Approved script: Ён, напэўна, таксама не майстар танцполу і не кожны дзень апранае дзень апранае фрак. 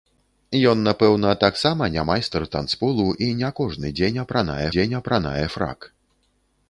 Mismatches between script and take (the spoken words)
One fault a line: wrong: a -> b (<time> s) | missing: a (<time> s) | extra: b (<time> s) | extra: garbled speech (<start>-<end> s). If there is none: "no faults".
no faults